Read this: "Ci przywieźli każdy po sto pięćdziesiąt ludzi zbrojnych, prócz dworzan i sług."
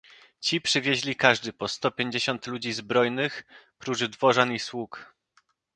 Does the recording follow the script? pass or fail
pass